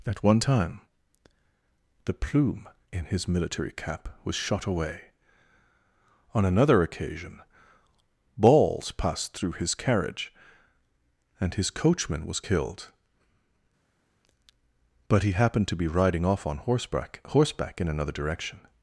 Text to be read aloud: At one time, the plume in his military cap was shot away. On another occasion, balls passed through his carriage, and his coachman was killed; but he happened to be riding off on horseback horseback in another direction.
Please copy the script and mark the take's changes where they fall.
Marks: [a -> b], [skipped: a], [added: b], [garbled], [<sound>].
At one time, the plume in his military cap was shot away. On another occasion, balls passed through his carriage, and his coachman was killed; but he happened to be riding off on horseback horseback in another direction.